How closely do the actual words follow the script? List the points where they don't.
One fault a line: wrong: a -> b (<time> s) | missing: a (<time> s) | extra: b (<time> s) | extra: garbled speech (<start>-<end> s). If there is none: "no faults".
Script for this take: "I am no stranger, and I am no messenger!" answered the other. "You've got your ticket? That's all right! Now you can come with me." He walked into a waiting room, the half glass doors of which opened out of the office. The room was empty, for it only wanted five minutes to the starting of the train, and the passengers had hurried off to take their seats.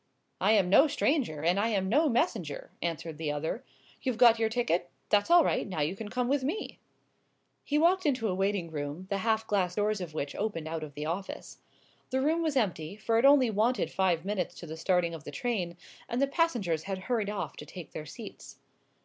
no faults